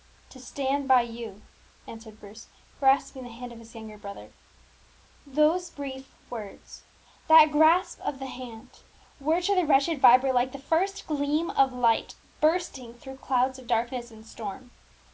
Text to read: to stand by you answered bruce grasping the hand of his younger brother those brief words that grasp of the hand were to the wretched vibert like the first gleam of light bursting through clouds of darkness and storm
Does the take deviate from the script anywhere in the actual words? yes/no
no